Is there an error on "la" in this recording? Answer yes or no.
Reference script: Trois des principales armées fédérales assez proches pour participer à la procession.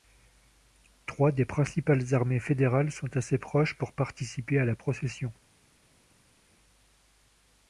no